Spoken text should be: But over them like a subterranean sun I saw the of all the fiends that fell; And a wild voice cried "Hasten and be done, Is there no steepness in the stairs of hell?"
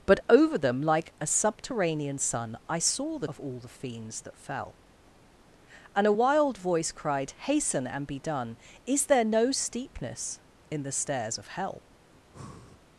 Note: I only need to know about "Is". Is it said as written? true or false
true